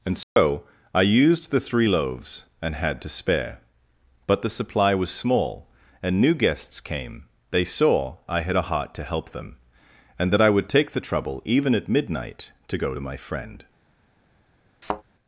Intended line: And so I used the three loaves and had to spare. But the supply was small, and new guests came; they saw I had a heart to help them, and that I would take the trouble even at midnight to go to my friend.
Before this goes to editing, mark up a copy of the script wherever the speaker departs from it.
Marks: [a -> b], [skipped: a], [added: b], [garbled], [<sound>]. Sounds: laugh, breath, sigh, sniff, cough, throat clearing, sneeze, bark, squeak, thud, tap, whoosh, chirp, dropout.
And so [dropout] I used the three loaves and had to spare. But the supply was small, and new guests came; they saw I had a heart to help them, and that I would take the trouble even at midnight to go to my friend. [thud]